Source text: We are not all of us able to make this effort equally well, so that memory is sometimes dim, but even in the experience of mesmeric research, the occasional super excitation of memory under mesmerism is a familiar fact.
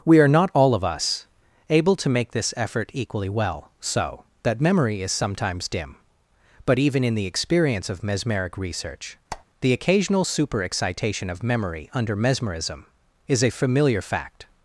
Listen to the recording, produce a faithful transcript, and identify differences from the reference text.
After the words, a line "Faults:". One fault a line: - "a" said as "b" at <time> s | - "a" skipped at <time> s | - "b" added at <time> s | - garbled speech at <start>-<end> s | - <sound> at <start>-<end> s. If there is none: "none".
We are not all of us able to make this effort equally well, so that memory is sometimes dim, but even in the experience of mesmeric research, the occasional super excitation of memory under mesmerism is a familiar fact.
Faults:
- squeak at 9.3-9.5 s